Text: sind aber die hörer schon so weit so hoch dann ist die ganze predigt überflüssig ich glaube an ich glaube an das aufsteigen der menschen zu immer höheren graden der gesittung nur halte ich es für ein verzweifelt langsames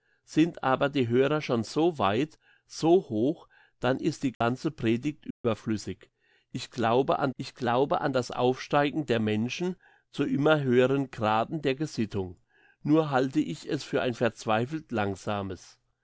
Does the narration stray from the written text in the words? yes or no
no